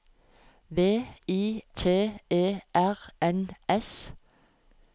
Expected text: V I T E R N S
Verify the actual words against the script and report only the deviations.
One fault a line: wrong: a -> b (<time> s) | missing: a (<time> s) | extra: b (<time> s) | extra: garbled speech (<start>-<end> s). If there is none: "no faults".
no faults